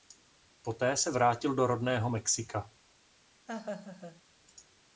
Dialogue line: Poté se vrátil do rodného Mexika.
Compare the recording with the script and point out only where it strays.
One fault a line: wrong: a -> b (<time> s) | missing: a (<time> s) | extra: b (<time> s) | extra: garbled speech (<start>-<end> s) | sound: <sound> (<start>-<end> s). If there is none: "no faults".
sound: laugh (3.5-4.2 s)